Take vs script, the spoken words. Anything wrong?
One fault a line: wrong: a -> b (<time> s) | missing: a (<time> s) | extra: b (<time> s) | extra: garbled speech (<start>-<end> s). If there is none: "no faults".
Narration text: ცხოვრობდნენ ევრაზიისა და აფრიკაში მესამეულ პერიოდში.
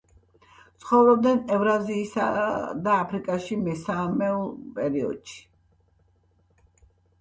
no faults